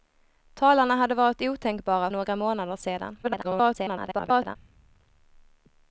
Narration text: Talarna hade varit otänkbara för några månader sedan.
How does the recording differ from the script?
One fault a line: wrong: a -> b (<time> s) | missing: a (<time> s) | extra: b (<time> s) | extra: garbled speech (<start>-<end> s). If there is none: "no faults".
missing: för (2.1 s)
extra: garbled speech (3.2-4.6 s)